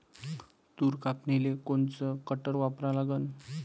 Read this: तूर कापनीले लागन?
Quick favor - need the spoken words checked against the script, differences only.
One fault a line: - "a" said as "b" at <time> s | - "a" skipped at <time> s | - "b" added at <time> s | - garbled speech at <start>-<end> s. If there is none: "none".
- "कोनचं कटर वापरा" added at 1.6 s